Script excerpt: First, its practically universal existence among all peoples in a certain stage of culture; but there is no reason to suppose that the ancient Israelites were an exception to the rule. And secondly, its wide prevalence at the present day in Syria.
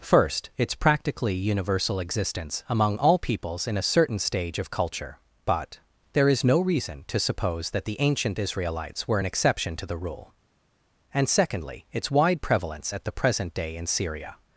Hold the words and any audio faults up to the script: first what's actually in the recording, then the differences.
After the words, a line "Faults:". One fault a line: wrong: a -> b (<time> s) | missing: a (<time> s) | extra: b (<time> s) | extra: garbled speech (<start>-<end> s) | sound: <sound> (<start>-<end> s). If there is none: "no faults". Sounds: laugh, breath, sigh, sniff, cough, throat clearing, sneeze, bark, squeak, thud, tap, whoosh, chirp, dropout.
First, its practically universal existence among all peoples in a certain stage of culture; but there is no reason to suppose that the ancient Israelites were an exception to the rule. And secondly, its wide prevalence at the present day in Syria.
Faults:
no faults